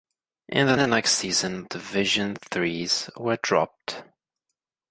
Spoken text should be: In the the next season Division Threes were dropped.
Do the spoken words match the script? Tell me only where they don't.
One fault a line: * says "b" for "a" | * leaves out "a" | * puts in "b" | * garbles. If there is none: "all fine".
all fine